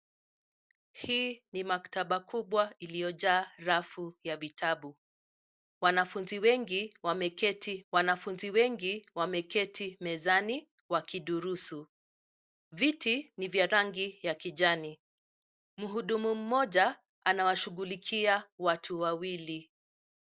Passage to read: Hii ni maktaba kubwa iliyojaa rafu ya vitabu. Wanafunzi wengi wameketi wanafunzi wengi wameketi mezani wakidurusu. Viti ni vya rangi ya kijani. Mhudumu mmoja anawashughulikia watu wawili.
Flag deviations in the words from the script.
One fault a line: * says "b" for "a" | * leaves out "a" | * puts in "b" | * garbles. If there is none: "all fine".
all fine